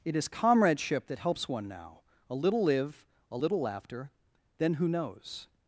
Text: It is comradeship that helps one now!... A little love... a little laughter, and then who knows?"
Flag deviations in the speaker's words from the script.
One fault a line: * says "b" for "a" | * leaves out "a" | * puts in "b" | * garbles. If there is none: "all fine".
* says "live" for "love"
* leaves out "and"